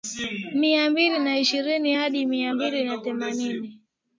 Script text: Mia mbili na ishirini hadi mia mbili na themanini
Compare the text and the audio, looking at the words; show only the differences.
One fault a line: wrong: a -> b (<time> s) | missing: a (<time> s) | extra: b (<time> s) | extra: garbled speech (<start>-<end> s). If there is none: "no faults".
no faults